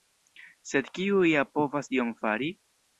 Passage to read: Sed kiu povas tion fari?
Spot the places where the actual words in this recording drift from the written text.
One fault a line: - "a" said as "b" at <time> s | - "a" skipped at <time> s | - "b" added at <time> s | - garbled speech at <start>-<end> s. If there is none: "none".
- "ja" added at 1.3 s